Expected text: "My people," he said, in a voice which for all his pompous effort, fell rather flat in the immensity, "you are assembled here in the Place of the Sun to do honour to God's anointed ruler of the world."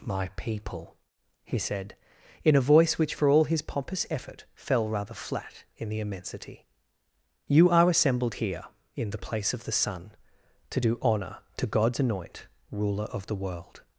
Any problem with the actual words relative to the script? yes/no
yes